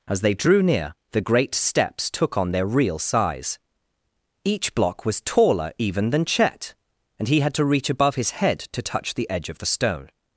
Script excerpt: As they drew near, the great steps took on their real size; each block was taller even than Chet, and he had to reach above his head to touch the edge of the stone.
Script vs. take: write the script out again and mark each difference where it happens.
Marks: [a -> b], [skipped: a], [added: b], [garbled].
As they drew near, the great steps took on their real size; each block was taller even than Chet, and he had to reach above his head to touch the edge of the stone.